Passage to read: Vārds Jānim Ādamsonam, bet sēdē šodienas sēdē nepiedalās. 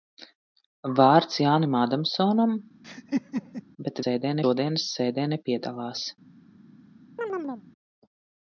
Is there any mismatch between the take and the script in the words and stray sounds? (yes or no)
yes